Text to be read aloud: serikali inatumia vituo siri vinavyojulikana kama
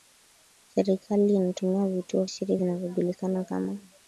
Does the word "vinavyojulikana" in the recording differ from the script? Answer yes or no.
no